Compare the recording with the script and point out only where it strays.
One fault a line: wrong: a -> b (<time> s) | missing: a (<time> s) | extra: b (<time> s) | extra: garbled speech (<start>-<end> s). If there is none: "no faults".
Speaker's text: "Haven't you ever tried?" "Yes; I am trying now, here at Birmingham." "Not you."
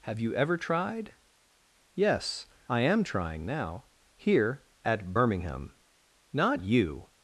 wrong: Haven't -> Have (0.1 s)